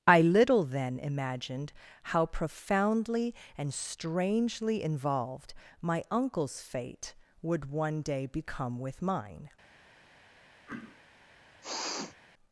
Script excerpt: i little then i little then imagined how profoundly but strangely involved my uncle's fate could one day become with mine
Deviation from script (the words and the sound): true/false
true